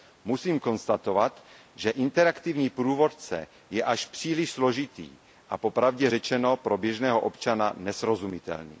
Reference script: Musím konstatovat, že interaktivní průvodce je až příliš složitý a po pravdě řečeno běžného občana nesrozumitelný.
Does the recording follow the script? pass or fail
fail